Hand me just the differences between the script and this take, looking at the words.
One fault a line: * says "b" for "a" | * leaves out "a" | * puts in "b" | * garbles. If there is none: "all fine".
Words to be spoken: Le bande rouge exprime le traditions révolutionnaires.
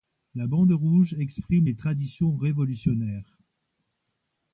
* says "La" for "Le"
* says "les" for "le"